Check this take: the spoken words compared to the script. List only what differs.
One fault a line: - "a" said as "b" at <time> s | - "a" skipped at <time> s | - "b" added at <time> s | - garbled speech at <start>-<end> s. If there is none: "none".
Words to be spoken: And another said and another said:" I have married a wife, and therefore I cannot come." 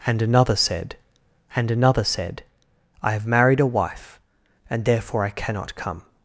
none